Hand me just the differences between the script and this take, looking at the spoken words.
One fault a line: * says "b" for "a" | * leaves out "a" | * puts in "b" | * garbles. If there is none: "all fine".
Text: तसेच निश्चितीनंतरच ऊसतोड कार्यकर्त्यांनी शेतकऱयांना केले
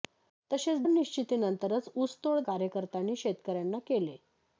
all fine